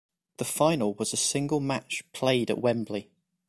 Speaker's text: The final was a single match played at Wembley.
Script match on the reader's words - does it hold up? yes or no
yes